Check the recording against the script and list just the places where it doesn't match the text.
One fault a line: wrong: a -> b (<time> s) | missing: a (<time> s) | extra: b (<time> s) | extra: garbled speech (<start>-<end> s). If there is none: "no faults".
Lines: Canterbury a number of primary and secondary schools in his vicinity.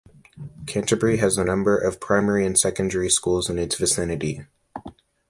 extra: has (1.2 s)
wrong: his -> its (3.6 s)